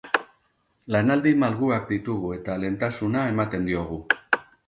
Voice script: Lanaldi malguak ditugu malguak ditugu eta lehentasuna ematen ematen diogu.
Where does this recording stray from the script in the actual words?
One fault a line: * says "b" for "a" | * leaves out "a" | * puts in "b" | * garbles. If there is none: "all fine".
* leaves out "malguak ditugu"
* leaves out "ematen"